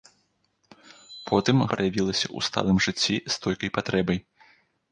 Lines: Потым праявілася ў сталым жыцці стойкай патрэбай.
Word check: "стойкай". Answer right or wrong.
right